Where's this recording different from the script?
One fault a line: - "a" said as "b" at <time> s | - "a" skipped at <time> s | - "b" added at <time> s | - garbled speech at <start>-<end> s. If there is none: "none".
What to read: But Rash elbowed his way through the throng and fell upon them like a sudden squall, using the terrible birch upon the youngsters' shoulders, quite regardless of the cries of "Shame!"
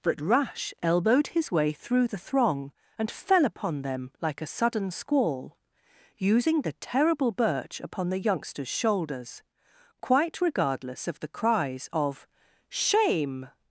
none